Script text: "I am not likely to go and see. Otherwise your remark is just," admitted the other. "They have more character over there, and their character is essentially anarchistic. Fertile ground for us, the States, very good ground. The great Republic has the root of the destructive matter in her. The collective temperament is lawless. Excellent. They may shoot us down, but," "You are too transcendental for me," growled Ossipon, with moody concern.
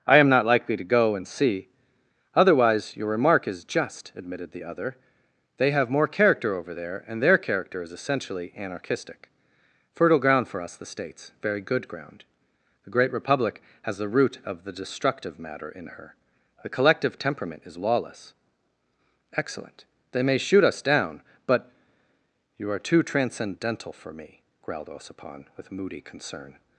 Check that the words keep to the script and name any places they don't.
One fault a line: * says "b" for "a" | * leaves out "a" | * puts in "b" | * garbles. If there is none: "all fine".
all fine